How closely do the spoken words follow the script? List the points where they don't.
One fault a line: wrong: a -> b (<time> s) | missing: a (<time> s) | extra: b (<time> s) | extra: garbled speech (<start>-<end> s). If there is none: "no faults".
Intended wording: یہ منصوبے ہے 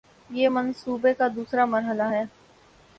extra: کا دوسرا مرحلہ (1.1 s)